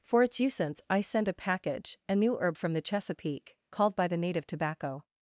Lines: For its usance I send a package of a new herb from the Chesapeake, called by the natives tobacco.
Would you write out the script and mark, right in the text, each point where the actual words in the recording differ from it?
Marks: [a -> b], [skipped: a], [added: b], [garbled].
For its usance I send a package [skipped: of] a new herb from the Chesapeake, called by the [natives -> native] tobacco.